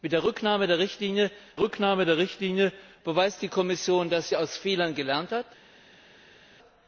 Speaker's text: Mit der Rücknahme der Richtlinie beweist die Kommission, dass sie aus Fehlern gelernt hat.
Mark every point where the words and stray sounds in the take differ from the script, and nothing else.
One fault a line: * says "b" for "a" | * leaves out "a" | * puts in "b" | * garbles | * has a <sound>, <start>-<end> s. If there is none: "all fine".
* puts in "Rücknahme der Richtlinie"